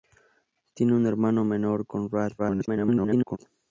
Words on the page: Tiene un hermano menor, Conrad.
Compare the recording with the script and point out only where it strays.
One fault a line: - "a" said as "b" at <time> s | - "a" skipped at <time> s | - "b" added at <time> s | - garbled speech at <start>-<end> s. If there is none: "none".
- garbled speech at 2.4-3.4 s